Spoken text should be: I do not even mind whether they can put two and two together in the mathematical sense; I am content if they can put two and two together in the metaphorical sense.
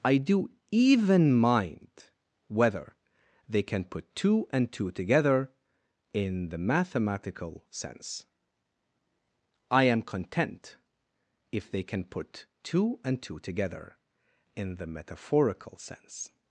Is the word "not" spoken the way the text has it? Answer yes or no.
no